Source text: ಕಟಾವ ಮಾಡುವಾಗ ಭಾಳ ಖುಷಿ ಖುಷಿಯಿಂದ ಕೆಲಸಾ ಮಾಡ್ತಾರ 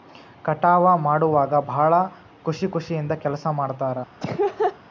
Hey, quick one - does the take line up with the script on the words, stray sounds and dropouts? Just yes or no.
no